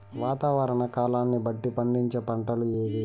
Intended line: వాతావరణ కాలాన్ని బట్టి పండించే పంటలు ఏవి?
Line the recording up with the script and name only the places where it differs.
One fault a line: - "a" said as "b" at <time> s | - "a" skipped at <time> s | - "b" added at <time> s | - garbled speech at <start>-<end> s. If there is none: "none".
none